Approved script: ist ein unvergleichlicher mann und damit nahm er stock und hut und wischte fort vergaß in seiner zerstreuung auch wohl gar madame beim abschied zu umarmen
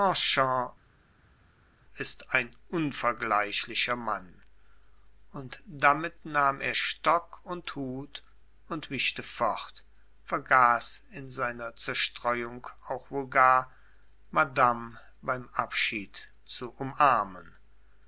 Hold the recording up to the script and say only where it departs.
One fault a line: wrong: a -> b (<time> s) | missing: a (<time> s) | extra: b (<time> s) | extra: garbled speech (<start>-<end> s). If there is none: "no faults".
no faults